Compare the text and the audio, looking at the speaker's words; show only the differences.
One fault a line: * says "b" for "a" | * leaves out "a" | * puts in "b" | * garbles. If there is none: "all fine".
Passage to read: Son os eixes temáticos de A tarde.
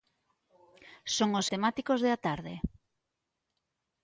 * leaves out "eixes"